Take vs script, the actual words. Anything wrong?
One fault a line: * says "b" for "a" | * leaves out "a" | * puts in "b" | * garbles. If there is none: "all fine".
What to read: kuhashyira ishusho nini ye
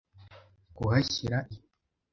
* leaves out "ishusho nini"